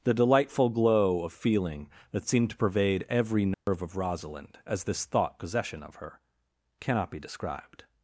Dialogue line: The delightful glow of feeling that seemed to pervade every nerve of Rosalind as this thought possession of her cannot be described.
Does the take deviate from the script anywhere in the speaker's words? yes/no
no